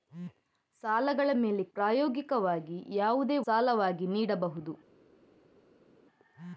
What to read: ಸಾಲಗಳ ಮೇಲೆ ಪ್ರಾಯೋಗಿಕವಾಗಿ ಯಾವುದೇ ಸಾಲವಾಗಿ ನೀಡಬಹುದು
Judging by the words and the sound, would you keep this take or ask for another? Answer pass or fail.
pass